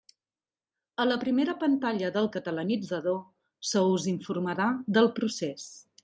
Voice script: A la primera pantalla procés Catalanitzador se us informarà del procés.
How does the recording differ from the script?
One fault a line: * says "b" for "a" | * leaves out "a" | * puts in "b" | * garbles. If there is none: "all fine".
* says "del" for "procés"